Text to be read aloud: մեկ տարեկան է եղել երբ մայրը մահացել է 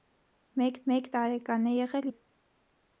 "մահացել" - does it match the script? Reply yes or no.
no